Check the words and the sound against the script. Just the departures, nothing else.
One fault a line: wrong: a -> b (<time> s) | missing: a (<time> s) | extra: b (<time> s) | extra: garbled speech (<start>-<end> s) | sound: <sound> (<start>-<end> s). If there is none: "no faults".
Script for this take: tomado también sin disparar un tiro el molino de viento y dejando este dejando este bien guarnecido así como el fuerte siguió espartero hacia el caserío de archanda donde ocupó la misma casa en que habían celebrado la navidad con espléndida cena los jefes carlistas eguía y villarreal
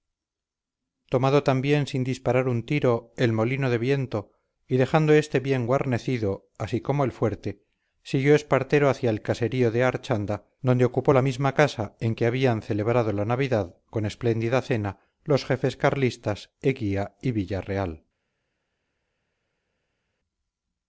missing: dejando este (5.4 s)